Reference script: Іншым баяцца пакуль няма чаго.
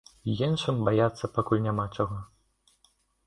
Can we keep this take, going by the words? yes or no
yes